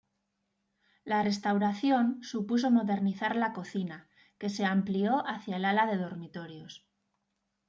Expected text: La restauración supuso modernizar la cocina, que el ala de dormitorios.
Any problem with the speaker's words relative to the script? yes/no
yes